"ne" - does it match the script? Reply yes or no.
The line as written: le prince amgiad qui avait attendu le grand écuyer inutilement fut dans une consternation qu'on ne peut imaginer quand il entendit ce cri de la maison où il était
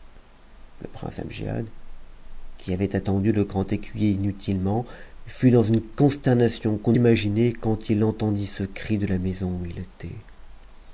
no